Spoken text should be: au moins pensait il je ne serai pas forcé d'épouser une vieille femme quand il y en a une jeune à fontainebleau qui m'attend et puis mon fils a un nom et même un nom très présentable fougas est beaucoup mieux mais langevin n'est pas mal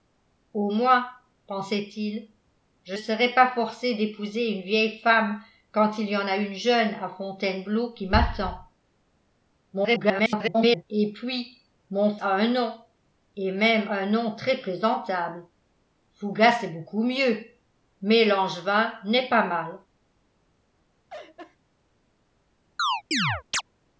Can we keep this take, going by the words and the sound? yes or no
no